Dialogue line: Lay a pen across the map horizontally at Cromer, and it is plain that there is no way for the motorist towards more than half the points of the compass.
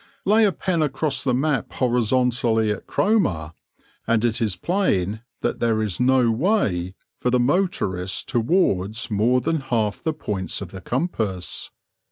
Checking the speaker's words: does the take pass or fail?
pass